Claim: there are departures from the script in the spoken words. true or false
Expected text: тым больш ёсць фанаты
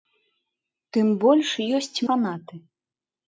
false